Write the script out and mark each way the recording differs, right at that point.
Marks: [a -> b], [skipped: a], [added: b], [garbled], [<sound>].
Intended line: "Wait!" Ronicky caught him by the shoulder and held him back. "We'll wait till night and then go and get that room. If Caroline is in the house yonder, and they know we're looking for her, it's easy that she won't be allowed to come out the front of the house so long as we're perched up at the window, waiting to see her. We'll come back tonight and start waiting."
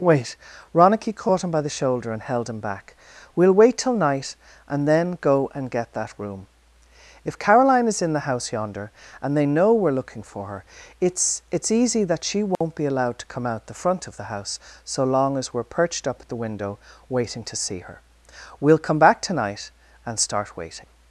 "Wait!" Ronicky caught him by the shoulder and held him back. "We'll wait till night and then go and get that room. If Caroline is in the house yonder, and they know we're looking for her, it's [added: it's] easy that she won't [dropout] be allowed to come out the front of the house so long as we're perched up at the window, waiting to see her. We'll come back tonight and start waiting."